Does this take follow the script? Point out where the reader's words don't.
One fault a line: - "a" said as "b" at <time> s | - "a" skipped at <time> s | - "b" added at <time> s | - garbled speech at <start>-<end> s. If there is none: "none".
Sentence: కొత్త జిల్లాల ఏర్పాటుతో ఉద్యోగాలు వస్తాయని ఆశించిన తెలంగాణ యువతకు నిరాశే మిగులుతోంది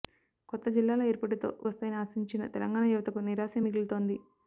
- "ఉద్యోగాలు" skipped at 1.5 s